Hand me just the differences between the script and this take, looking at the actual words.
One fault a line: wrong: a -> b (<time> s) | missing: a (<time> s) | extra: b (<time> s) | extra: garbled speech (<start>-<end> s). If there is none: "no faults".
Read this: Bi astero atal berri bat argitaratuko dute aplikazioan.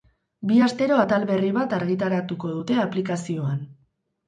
no faults